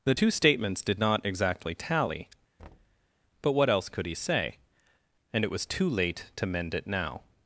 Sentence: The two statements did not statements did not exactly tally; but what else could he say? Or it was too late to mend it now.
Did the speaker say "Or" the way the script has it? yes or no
no